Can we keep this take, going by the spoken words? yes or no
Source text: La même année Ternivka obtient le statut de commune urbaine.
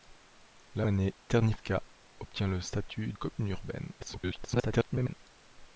no